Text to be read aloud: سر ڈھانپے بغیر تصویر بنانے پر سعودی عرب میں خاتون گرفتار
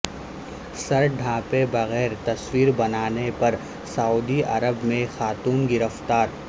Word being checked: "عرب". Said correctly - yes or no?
yes